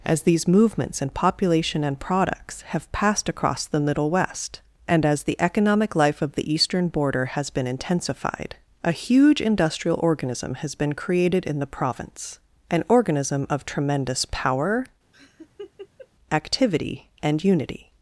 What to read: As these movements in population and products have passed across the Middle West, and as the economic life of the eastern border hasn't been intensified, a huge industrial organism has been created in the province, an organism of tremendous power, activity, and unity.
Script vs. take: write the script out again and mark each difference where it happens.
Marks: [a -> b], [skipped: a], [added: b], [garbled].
As these movements in population and products have passed across the Middle West, and as the economic life of the eastern border [hasn't -> has] been intensified, a huge industrial organism has been created in the province, an organism of tremendous power, activity, and unity.